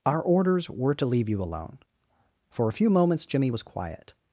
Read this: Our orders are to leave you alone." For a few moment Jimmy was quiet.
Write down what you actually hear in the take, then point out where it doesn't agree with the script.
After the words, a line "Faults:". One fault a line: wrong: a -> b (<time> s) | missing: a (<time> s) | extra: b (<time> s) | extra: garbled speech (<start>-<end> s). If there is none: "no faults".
Our orders were to leave you alone." For a few moments Jimmy was quiet.
Faults:
wrong: are -> were (0.7 s)
wrong: moment -> moments (2.9 s)